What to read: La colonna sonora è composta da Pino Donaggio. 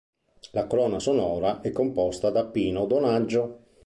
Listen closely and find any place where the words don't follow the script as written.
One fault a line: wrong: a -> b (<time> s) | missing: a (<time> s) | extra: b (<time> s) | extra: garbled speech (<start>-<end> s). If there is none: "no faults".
no faults